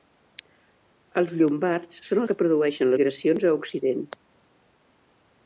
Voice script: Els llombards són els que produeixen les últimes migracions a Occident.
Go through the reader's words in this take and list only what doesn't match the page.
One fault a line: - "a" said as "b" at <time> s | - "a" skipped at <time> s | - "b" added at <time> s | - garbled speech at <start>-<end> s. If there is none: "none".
- "els" skipped at 2.2 s
- "les últimes" skipped at 2.9 s